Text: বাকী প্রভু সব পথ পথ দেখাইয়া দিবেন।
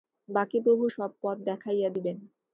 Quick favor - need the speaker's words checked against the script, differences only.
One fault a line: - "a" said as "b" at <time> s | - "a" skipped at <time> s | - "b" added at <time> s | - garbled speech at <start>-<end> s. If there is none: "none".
- "পথ" skipped at 1.4 s